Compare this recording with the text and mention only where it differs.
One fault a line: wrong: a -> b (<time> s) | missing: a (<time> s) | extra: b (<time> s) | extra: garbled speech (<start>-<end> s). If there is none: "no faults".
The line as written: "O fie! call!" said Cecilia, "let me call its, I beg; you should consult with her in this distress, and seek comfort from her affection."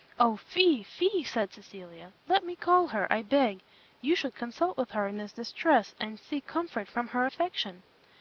wrong: call -> fie (0.8 s)
wrong: its -> her (2.9 s)